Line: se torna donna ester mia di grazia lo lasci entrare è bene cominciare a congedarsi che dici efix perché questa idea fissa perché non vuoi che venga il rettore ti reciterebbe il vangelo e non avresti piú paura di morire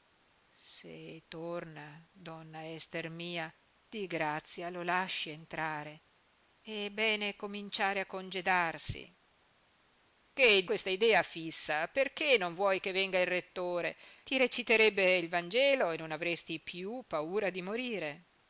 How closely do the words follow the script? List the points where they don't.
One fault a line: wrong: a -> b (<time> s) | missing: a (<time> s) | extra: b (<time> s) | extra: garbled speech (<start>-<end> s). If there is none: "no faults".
missing: dici efix perché (10.7 s)